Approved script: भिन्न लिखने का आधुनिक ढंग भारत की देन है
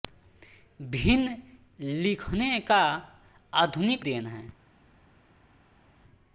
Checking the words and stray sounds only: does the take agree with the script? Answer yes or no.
no